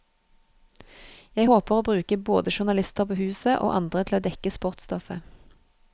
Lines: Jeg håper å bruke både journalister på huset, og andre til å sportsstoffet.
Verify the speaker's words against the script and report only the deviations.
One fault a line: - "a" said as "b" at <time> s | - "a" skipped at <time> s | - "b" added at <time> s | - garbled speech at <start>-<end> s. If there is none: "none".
- "dekke" added at 4.3 s